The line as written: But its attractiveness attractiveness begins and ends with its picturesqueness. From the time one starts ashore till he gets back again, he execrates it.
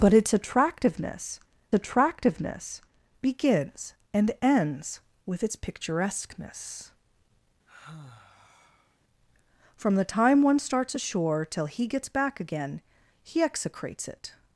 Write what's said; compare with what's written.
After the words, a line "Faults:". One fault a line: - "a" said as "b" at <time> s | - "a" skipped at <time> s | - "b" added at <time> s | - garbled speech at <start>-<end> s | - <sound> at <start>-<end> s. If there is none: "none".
But its attractiveness attractiveness begins and ends with its picturesqueness. From the time one starts ashore till he gets back again, he execrates it.
Faults:
- sigh at 7.7-9.0 s